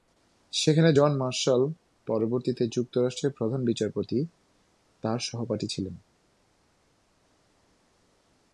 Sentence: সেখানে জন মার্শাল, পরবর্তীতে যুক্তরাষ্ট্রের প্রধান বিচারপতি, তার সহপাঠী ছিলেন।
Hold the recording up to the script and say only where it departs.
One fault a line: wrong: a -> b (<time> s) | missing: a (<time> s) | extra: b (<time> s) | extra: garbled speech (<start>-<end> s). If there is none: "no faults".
no faults